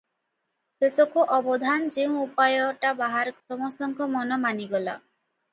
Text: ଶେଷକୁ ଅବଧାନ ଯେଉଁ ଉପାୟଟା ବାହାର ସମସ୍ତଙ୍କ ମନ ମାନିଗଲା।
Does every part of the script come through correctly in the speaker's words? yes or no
yes